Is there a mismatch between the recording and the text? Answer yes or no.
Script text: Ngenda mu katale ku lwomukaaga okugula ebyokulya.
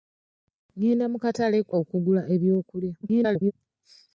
yes